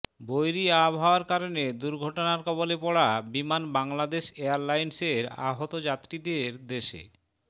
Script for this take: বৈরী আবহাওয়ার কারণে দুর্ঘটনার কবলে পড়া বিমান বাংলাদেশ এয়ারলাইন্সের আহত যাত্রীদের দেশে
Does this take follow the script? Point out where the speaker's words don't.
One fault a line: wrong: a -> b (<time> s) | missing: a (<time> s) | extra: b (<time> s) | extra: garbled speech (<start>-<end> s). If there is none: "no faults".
no faults